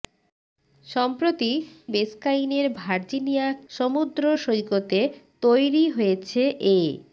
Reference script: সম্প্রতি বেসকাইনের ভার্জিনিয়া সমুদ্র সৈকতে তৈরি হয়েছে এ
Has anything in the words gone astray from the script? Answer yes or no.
no